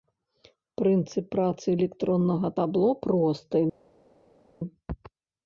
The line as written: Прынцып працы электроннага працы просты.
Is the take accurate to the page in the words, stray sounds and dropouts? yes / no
no